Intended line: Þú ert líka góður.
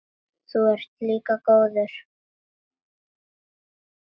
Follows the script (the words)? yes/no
yes